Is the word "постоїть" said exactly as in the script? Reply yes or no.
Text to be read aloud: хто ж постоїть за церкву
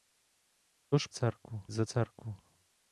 no